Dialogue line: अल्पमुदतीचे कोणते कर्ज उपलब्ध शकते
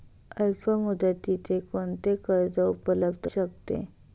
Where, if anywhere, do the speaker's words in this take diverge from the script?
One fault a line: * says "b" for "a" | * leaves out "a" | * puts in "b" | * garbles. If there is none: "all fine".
all fine